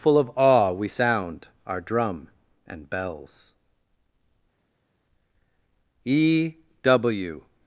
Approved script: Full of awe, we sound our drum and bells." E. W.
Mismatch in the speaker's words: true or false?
false